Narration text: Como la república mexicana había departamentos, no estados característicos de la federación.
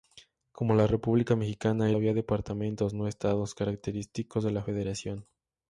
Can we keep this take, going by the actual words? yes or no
yes